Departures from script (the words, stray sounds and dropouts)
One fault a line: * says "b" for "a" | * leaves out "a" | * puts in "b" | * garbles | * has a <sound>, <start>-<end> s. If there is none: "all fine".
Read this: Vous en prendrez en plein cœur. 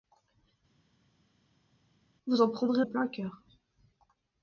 all fine